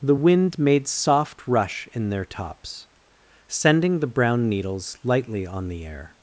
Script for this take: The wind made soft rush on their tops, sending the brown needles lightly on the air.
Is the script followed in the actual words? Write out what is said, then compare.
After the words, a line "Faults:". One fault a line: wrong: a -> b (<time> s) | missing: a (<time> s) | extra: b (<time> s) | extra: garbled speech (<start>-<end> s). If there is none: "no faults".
The wind made soft rush in their tops, sending the brown needles lightly on the air.
Faults:
wrong: on -> in (1.9 s)